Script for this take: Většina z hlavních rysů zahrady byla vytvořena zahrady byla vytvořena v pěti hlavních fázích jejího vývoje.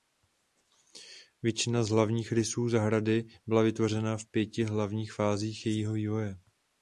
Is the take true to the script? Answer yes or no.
no